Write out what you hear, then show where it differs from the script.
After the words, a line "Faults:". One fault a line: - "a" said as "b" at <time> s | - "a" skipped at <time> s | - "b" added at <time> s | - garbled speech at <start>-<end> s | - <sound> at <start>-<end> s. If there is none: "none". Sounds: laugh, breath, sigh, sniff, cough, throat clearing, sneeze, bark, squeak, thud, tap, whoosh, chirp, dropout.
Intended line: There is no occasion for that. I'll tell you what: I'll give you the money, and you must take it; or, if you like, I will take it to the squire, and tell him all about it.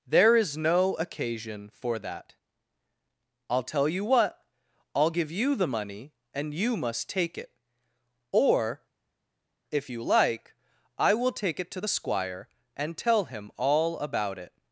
There is no occasion for that. I'll tell you what: I'll give you the money, and you must take it; or, if you like, I will take it to the squire, and tell him all about it.
Faults:
none